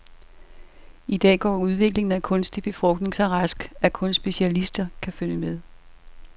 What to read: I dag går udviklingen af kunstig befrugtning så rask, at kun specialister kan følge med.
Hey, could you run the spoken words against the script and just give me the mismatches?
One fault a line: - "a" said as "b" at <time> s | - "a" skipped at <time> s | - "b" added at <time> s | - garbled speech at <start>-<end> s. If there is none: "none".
none